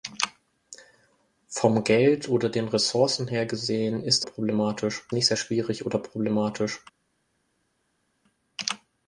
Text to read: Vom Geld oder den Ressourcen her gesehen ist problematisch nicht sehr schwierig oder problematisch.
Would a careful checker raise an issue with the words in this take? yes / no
no